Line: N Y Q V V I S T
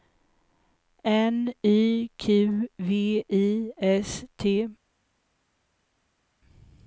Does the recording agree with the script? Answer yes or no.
no